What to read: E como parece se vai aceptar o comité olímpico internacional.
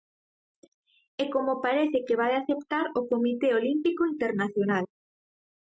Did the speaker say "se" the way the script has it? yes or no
no